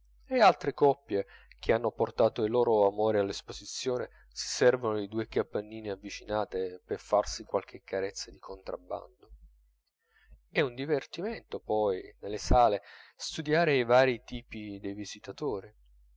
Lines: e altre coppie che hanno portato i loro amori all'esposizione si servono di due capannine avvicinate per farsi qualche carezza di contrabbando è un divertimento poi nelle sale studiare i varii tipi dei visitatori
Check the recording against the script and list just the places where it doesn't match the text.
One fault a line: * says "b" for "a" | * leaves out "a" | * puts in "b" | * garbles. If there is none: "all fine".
all fine